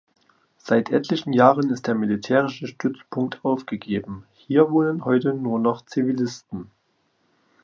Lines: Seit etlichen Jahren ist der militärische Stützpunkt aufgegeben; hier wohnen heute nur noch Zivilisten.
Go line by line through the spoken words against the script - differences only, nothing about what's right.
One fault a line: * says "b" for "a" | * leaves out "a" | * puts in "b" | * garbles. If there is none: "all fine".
all fine